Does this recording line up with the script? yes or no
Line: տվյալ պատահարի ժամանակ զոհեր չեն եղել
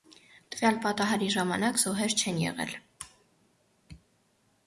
yes